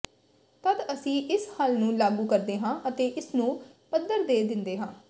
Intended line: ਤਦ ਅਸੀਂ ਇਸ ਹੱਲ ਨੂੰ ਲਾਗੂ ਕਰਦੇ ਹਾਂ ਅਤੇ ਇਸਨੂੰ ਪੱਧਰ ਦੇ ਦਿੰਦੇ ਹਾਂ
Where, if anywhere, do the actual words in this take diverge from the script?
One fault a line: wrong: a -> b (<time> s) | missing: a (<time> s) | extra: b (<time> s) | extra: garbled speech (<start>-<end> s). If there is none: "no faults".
no faults